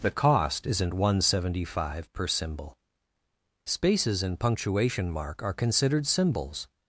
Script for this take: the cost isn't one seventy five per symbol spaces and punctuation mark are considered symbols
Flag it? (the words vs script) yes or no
no